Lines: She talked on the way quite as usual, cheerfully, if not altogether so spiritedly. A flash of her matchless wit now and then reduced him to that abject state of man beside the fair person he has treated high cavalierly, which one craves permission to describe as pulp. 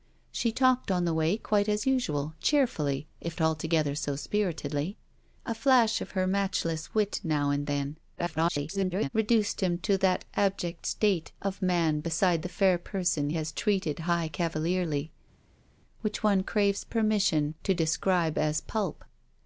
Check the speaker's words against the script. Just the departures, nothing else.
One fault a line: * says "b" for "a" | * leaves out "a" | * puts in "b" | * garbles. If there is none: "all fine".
* leaves out "not"
* garbles
* leaves out "he"